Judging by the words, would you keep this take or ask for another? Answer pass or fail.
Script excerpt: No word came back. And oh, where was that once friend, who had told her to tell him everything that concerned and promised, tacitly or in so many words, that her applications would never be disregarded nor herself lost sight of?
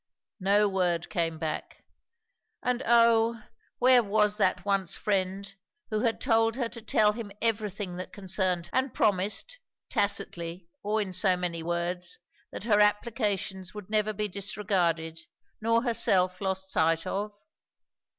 pass